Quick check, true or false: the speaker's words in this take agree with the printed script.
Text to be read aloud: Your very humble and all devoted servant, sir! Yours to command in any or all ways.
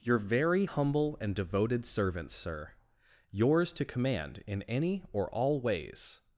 false